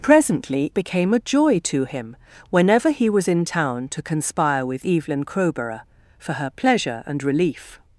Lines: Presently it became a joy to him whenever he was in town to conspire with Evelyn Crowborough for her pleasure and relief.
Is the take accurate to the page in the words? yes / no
no